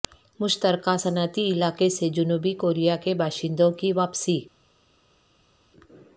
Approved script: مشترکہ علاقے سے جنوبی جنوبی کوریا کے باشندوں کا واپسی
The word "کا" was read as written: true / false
false